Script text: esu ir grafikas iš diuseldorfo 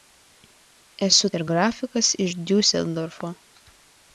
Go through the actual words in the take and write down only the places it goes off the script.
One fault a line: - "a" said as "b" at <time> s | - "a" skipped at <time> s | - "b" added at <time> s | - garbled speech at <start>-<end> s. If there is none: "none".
none